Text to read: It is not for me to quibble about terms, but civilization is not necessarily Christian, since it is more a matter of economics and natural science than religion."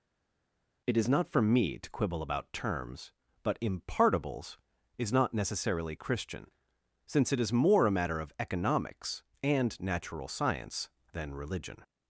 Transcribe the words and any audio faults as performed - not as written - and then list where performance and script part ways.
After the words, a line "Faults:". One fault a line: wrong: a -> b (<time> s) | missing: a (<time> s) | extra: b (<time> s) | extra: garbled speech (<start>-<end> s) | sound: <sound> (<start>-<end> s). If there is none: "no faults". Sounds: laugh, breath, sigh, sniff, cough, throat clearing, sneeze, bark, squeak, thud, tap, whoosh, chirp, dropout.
It is not for me to quibble about terms, but impartibles is not necessarily Christian, since it is more a matter of economics and natural science than religion."
Faults:
wrong: civilization -> impartibles (3.6 s)